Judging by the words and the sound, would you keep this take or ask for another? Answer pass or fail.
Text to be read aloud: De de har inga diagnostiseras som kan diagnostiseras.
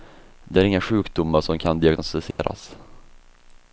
fail